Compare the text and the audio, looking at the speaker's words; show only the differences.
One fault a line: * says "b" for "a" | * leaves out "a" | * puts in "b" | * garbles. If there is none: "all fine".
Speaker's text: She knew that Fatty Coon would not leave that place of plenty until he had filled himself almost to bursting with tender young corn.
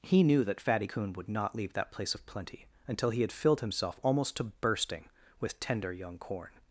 * says "He" for "She"